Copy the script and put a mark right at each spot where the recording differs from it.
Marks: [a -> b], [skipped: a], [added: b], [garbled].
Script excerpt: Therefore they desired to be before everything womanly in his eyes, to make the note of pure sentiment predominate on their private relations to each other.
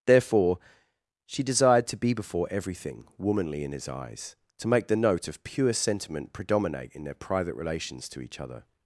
Therefore [they -> she] desired to be before everything womanly in his eyes, to make the note of pure sentiment predominate [on -> in] their private relations to each other.